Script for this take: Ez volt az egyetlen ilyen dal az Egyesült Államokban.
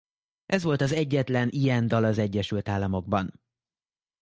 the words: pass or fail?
pass